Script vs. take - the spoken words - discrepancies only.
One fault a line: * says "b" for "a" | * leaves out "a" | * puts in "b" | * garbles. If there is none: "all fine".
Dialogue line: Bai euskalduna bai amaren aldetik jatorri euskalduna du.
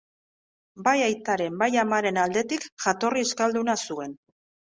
* says "aitaren" for "euskalduna"
* says "zuen" for "du"